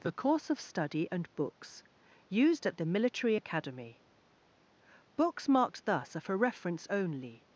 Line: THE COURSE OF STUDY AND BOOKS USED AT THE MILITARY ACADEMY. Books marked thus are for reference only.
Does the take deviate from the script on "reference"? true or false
false